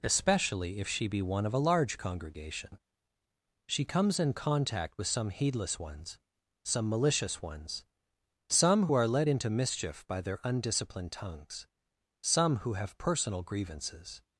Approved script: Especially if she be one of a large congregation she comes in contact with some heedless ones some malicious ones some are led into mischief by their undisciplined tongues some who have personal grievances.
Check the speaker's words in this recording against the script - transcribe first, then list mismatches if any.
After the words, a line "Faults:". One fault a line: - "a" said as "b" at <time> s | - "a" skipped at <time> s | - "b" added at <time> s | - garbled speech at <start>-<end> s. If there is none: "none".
Especially if she be one of a large congregation she comes in contact with some heedless ones some malicious ones some are led into mischief by their undisciplined tongues some who have personal grievances.
Faults:
none